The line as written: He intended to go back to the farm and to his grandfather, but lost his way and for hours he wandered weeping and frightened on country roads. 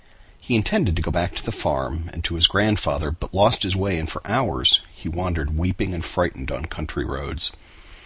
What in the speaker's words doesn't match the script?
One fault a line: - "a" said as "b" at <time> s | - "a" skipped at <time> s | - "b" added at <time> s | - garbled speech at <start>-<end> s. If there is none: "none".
none